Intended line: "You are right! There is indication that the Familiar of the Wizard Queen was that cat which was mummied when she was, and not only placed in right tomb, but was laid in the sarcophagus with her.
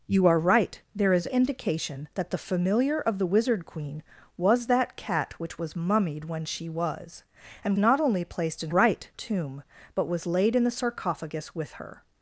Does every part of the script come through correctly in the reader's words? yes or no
yes